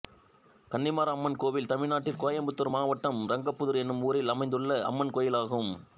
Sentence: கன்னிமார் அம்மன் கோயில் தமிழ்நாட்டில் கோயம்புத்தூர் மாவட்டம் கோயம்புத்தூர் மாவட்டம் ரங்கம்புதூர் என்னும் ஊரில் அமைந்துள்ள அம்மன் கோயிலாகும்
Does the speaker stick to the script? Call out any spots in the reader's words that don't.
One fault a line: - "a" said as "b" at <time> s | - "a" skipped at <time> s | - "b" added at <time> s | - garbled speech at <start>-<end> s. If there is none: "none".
- "கோயம்புத்தூர் மாவட்டம்" skipped at 3.2 s